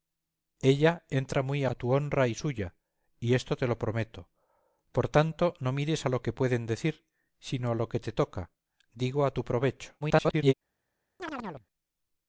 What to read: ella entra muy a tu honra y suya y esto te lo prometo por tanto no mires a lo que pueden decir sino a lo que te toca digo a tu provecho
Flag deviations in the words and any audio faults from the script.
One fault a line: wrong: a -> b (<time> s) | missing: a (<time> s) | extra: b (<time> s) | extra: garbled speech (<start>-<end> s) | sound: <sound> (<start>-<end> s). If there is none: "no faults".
extra: garbled speech (10.0-10.5 s)
sound: chirp (11.2-11.7 s)